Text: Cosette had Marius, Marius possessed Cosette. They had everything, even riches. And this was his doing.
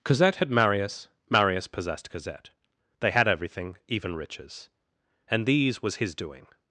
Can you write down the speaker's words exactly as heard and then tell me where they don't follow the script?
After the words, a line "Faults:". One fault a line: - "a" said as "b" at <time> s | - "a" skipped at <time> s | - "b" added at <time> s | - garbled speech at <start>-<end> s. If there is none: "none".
Cosette had Marius, Marius possessed Cosette. They had everything, even riches. And these was his doing.
Faults:
- "this" said as "these" at 5.5 s